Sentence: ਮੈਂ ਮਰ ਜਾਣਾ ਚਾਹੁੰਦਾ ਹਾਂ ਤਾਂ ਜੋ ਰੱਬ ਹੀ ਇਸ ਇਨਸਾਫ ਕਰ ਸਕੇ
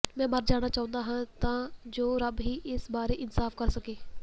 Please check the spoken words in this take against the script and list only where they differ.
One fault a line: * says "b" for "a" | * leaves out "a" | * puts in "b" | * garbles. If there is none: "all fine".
* puts in "ਬਾਰੇ"